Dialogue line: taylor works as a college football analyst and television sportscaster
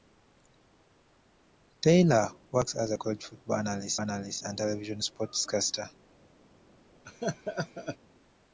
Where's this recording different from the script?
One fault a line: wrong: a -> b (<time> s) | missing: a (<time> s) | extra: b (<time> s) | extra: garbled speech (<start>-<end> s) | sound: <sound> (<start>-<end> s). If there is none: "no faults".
extra: analyst (4.0 s)
sound: laugh (7.0-8.0 s)